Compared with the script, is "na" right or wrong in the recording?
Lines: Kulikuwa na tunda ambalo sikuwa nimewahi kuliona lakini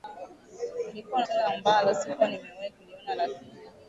wrong